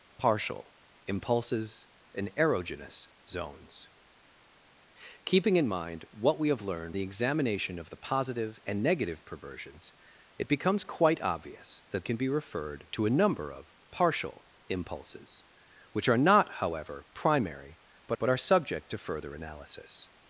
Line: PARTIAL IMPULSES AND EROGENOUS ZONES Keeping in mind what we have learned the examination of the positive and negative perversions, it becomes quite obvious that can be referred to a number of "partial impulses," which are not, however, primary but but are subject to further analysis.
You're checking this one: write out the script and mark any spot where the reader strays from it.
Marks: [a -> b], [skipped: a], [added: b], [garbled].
PARTIAL IMPULSES AND EROGENOUS ZONES Keeping in mind what we have learned the examination of the positive and negative perversions, it becomes quite obvious that can be referred to a number of "partial impulses," which are not, however, primary but but are subject to further analysis.